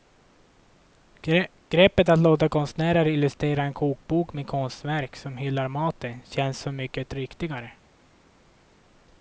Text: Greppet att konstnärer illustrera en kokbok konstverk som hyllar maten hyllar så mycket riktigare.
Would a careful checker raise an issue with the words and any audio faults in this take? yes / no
yes